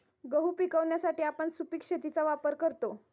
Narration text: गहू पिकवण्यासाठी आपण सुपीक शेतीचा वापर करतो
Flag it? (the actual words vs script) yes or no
no